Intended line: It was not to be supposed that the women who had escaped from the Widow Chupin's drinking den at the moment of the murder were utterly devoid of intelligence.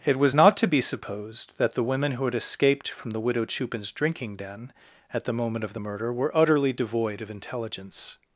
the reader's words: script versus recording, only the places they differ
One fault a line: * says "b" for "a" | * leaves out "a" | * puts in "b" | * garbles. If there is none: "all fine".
all fine